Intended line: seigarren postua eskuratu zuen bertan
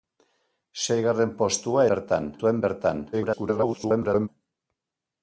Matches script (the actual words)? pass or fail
fail